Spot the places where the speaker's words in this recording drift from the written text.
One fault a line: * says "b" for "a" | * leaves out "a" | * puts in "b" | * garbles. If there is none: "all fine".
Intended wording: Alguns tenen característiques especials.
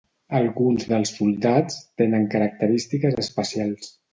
* puts in "dels soldats"